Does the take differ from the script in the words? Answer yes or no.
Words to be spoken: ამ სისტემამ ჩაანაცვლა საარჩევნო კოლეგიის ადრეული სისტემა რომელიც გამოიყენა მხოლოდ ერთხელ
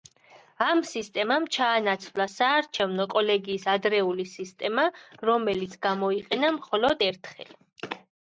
no